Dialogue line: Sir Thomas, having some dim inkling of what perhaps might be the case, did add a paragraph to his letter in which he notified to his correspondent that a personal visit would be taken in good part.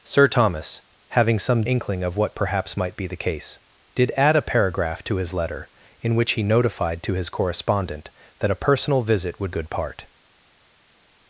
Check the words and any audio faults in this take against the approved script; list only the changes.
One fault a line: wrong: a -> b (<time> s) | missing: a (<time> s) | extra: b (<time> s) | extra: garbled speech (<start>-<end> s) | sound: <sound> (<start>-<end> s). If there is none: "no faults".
missing: dim (1.6 s)
missing: be taken in (9.5 s)